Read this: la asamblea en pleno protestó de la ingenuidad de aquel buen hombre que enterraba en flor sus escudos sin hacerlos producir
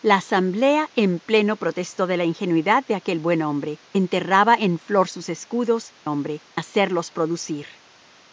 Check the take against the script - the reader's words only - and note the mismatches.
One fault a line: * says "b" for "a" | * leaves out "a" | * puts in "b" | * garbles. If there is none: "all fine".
* leaves out "que"
* says "hombre" for "sin"